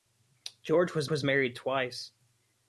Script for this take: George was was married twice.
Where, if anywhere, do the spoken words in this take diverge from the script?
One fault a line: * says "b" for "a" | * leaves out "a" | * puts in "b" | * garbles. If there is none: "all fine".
all fine